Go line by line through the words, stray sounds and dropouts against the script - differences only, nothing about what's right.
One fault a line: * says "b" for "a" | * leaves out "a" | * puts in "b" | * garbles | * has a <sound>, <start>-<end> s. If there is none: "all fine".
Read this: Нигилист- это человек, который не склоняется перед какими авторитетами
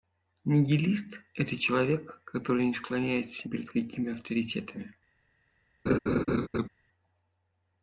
* has a laugh, 5.9-6.7 s